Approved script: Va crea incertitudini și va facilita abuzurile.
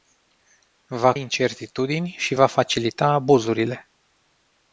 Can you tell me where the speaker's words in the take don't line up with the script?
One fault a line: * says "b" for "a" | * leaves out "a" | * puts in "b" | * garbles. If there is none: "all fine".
* leaves out "crea"